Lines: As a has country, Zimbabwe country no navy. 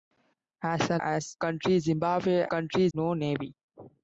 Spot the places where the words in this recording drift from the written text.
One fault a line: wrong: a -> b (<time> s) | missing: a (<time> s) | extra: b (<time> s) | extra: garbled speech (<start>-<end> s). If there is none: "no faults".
no faults